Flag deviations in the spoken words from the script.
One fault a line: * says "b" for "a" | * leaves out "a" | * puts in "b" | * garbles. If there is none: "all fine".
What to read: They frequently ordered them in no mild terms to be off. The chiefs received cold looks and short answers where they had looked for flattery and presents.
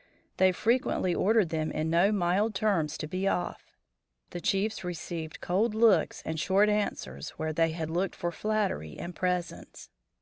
all fine